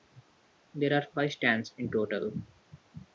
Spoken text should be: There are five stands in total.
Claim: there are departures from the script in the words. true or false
false